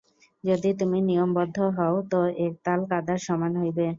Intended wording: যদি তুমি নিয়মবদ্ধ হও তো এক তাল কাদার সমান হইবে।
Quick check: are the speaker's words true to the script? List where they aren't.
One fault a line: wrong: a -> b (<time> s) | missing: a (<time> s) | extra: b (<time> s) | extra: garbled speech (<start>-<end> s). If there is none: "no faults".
no faults